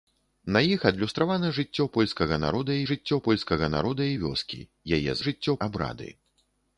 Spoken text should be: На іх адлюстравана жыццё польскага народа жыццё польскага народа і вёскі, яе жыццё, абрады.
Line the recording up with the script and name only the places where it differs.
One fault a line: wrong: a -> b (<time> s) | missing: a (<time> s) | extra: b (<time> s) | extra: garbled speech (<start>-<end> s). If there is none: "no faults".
no faults